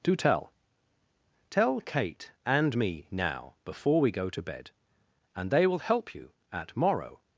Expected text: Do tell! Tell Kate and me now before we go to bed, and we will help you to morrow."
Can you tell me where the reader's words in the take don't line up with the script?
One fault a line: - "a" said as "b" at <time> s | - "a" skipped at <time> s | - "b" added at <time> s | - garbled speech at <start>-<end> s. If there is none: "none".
- "we" said as "they" at 5.5 s
- "to" said as "at" at 6.5 s